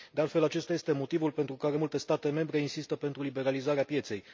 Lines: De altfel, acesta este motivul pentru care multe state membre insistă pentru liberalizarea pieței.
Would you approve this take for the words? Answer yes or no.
yes